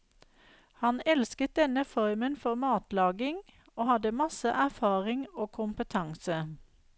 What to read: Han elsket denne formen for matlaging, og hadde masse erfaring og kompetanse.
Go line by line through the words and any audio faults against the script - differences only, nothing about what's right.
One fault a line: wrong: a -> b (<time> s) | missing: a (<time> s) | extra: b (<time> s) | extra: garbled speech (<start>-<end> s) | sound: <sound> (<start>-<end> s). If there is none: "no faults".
no faults